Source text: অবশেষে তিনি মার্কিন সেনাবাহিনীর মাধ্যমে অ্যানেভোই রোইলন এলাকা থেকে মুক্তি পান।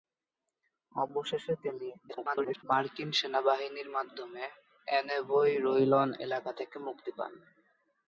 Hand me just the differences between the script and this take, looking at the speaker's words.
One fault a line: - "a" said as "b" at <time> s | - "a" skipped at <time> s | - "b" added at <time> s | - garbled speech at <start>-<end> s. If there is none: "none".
- garbled speech at 2.1-2.6 s